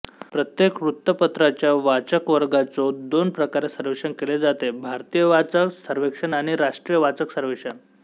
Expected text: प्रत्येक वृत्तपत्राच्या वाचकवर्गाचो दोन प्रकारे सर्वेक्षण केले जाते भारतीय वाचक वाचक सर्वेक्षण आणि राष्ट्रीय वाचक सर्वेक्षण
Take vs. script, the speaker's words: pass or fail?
fail